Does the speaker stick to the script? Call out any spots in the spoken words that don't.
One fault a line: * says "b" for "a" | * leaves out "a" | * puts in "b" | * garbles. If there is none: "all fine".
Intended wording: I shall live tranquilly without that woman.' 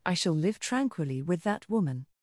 * says "with" for "without"